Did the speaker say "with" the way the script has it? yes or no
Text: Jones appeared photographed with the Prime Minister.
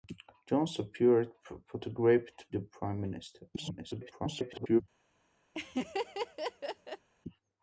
no